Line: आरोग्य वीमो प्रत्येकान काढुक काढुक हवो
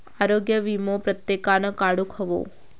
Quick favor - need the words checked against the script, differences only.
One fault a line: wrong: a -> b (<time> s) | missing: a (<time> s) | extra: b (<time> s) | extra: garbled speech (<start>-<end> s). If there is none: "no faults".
missing: काढुक (2.1 s)